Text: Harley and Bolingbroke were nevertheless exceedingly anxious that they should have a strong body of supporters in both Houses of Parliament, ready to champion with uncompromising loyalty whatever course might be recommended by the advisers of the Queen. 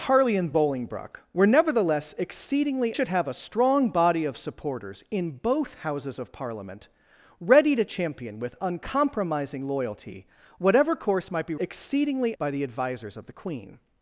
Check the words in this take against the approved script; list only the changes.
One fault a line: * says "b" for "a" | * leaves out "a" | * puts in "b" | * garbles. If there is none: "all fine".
* leaves out "anxious that they"
* says "exceedingly" for "recommended"